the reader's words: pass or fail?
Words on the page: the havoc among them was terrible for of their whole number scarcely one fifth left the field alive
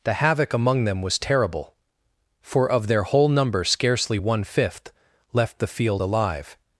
pass